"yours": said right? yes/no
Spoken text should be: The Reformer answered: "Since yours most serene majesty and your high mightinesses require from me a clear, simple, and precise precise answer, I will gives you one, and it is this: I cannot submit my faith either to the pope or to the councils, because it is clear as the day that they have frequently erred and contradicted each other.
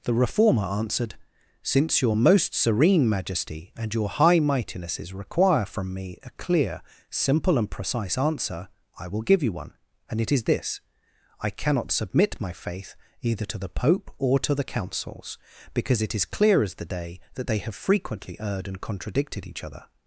no